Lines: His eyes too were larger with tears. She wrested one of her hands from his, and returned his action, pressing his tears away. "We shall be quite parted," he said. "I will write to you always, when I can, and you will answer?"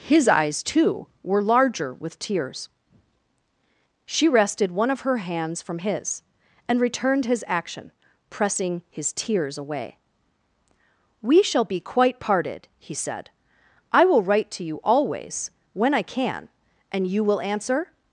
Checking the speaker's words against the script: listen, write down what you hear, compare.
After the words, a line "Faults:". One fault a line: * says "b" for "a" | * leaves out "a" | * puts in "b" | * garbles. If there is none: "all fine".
His eyes too were larger with tears. She wrested one of her hands from his, and returned his action, pressing his tears away. "We shall be quite parted," he said. "I will write to you always, when I can, and you will answer?"
Faults:
all fine